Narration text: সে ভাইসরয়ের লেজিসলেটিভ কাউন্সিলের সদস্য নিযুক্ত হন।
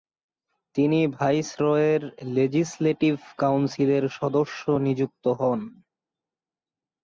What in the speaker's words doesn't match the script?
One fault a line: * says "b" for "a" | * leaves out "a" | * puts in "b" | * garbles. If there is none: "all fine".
* says "তিনি" for "সে"